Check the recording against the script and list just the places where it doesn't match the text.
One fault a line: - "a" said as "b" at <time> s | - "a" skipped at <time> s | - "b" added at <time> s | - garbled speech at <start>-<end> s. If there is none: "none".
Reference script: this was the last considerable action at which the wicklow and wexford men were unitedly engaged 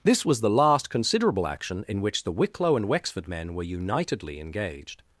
- "at" said as "in" at 1.9 s